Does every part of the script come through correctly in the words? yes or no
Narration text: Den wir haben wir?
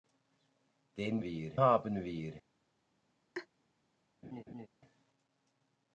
yes